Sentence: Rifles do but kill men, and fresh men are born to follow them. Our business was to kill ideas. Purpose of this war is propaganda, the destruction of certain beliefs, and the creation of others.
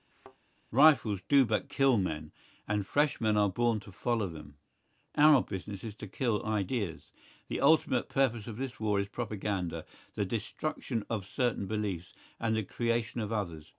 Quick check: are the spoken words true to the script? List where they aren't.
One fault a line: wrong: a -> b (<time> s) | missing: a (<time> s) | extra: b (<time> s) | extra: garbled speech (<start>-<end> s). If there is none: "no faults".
wrong: was -> is (5.8 s)
extra: The ultimate (7.5 s)